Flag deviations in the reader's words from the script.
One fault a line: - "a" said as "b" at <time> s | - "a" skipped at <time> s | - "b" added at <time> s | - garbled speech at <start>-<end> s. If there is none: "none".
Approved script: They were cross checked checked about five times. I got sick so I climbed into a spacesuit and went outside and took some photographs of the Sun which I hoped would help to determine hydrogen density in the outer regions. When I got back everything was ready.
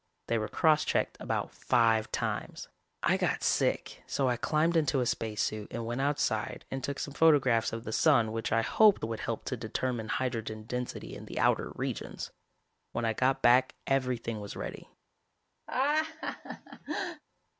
- "checked" skipped at 1.1 s